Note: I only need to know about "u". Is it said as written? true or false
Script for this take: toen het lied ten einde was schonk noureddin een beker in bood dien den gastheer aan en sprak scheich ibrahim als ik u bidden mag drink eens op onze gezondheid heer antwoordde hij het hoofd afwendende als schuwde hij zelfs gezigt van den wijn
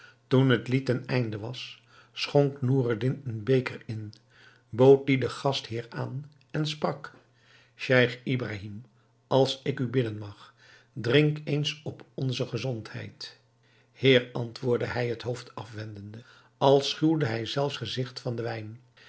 true